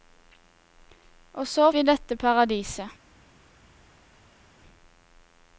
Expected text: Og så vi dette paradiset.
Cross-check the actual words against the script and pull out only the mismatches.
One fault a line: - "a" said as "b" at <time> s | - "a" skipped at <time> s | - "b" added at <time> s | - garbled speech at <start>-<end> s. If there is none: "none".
none